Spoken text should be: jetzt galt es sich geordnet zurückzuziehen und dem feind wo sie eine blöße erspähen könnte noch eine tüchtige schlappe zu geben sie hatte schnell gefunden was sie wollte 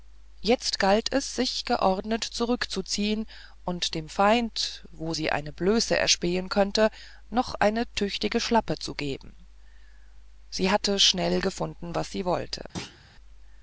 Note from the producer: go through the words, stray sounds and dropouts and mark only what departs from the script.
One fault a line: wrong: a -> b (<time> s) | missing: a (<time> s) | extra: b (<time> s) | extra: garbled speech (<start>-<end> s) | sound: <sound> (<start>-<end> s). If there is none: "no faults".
sound: thud (12.7-13.0 s)